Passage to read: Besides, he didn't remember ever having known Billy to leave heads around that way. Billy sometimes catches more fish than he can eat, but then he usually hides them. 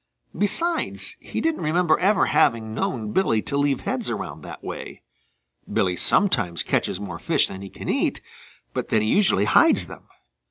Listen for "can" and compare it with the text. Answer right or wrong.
right